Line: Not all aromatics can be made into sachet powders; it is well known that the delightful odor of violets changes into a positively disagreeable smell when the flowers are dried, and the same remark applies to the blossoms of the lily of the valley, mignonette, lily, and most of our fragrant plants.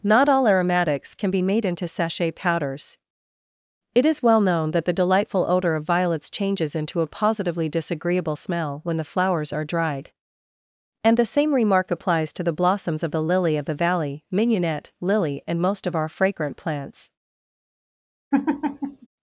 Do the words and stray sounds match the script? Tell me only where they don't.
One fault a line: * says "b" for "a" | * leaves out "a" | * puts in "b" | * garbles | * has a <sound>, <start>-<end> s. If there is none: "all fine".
* has a laugh, 18.3-19.1 s